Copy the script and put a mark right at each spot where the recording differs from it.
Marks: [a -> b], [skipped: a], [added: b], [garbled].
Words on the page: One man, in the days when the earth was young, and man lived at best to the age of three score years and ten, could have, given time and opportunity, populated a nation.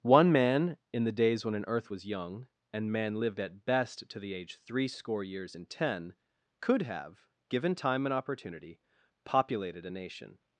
One man, in the days when [the -> an] earth was young, and man lived at best to the age [skipped: of] three score years and ten, could have, given time and opportunity, populated a nation.